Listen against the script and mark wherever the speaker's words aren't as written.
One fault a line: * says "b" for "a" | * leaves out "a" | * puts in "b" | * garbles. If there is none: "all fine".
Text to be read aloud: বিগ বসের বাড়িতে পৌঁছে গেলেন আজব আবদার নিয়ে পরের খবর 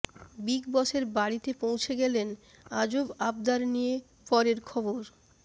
all fine